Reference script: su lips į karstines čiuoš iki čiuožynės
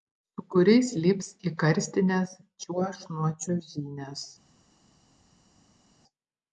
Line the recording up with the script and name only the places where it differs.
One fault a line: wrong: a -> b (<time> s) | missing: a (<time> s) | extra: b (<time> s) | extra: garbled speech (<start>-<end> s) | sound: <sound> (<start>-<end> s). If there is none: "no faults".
extra: kuriais (0.5 s)
wrong: iki -> nuo (3.1 s)